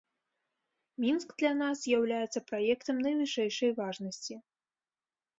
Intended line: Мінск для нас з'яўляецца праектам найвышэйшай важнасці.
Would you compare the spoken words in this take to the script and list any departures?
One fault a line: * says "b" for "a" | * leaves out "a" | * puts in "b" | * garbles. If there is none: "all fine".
all fine